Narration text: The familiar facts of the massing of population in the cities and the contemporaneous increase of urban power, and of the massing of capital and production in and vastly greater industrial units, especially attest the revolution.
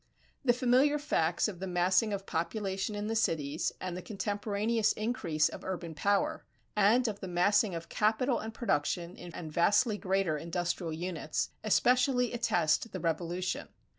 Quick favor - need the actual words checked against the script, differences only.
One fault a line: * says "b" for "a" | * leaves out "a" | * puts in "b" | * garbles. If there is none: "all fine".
all fine